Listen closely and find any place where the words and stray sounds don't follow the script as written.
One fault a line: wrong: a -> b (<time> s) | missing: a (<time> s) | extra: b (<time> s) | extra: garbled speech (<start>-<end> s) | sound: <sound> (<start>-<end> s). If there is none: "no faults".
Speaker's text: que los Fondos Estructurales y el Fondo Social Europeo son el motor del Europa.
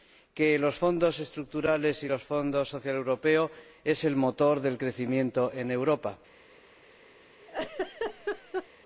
extra: crecimiento en (4.8 s)
sound: laugh (7.4-8.7 s)